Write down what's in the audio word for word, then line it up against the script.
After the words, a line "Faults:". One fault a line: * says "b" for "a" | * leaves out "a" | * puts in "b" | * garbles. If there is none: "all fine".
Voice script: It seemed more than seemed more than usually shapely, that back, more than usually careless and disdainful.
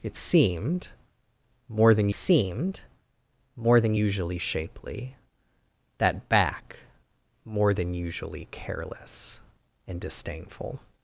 It seemed more than seemed more than usually shapely, that back, more than usually careless and disdainful.
Faults:
all fine